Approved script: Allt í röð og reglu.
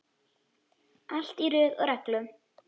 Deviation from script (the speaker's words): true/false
false